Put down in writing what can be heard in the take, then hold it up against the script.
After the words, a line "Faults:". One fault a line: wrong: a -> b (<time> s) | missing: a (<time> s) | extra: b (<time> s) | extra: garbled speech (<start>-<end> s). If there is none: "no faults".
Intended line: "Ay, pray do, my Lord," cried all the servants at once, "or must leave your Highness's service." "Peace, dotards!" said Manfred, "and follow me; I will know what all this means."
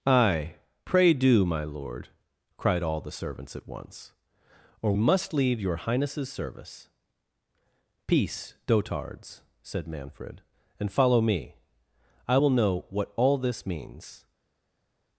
"Ay, pray do, my Lord," cried all the servants at once, "or must leave your Highness's service." "Peace, dotards!" said Manfred, "and follow me; I will know what all this means."
Faults:
no faults